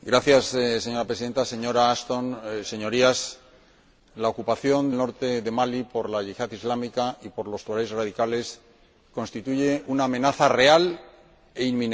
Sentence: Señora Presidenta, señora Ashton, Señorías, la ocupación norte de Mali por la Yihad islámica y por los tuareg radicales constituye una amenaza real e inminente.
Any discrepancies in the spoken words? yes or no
no